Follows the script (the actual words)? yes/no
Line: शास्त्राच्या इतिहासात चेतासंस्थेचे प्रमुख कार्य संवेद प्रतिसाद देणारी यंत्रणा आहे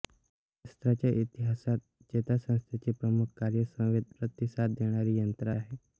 yes